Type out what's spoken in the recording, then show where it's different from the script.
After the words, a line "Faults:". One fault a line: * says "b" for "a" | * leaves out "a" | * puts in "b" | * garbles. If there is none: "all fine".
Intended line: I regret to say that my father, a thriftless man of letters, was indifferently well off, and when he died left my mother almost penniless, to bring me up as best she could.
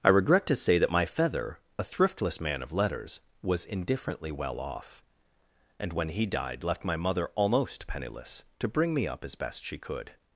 I regret to say that my feather, a thriftless man of letters, was indifferently well off, and when he died left my mother almost penniless, to bring me up as best she could.
Faults:
* says "feather" for "father"